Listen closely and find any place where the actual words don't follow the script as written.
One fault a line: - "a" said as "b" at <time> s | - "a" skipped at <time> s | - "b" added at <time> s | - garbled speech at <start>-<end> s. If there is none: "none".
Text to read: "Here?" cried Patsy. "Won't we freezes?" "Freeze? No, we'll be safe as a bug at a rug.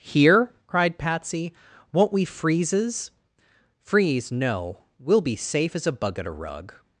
none